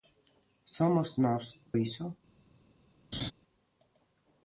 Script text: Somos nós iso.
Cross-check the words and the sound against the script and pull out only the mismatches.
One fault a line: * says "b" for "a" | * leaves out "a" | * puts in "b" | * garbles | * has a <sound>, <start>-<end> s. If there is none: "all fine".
* has a laugh, 3.1-3.3 s